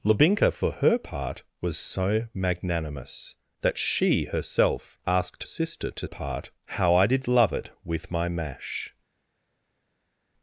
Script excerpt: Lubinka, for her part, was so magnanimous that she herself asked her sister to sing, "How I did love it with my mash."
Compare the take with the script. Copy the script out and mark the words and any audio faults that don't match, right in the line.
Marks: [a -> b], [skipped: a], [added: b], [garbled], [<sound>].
Lubinka, for her part, was so magnanimous that she herself asked [skipped: her] sister to [sing, -> part] "How I did love it with my mash."